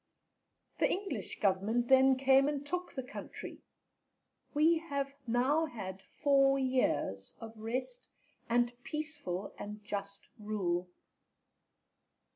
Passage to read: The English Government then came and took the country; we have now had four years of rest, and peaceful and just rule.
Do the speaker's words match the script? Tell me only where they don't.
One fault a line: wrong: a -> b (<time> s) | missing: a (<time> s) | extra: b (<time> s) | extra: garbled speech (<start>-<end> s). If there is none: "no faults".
no faults